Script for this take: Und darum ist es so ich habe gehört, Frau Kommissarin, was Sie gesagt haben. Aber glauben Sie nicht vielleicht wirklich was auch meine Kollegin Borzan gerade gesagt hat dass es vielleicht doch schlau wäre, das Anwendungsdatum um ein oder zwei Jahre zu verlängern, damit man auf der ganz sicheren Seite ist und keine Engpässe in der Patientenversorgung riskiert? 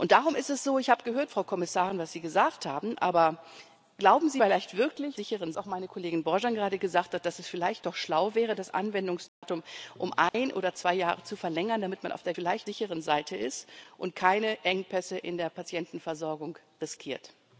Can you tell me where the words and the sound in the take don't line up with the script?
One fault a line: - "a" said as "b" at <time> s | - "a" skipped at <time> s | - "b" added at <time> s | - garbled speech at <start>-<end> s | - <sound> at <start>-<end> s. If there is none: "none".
- "nicht" skipped at 4.4 s
- "was" said as "sicheren" at 5.1 s
- dropout at 9.3-9.4 s
- dropout at 10.3-10.3 s
- "ganz" said as "vielleicht" at 12.3 s